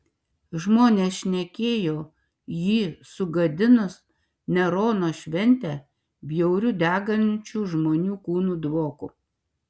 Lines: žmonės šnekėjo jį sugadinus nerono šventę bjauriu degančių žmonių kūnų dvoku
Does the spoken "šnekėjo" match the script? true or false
true